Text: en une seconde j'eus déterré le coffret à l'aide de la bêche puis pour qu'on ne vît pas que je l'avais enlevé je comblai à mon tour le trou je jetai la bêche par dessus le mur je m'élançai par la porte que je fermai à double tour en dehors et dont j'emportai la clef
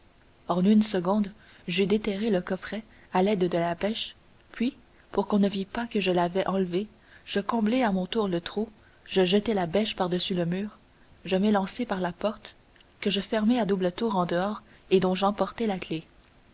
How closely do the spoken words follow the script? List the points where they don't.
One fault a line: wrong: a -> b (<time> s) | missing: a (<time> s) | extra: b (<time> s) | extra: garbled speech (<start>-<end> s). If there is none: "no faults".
no faults